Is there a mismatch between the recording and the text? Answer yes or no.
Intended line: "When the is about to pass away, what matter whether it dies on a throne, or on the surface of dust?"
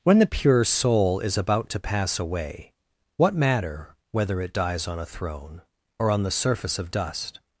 yes